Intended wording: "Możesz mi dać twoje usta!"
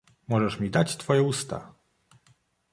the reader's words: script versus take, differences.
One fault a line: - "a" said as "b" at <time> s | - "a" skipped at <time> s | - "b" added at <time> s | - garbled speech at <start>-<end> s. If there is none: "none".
none